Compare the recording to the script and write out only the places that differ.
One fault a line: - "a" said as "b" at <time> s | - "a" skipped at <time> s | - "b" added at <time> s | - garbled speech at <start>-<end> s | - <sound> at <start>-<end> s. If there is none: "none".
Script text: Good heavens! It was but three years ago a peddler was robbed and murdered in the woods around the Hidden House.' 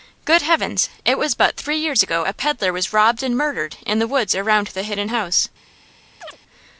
- chirp at 6.2-6.4 s